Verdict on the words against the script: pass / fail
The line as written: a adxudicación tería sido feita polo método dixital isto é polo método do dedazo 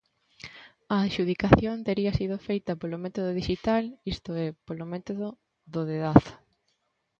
pass